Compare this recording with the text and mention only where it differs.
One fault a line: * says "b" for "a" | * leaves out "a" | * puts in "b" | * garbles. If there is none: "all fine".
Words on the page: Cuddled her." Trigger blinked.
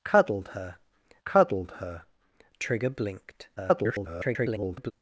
* puts in "cuddled her"
* garbles